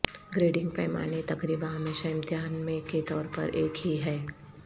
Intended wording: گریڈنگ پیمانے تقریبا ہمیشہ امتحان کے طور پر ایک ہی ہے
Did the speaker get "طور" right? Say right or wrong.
right